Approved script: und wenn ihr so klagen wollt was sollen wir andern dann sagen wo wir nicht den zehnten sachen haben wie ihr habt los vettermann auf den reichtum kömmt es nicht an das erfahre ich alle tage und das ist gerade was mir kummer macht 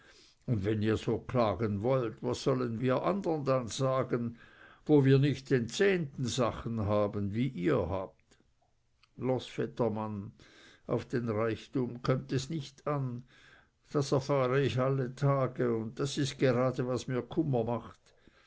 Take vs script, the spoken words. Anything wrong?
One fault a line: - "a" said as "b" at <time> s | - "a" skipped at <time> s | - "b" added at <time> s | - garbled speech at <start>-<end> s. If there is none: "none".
none